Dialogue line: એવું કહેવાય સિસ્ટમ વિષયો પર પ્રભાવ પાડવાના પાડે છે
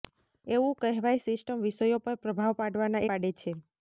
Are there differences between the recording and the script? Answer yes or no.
no